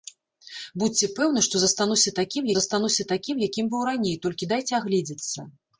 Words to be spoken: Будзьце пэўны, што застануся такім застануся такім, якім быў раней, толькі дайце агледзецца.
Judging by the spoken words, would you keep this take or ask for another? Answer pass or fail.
pass